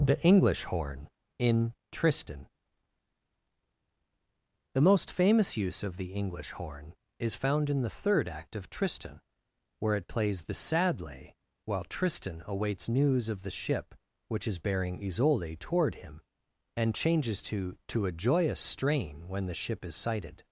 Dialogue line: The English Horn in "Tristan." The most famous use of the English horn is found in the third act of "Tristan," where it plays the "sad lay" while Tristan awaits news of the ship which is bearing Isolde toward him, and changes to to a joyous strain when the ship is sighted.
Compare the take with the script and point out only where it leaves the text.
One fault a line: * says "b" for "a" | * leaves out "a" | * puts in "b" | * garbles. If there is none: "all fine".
all fine